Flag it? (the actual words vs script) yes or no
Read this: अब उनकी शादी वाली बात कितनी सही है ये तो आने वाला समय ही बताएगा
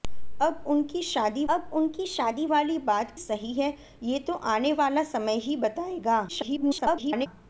yes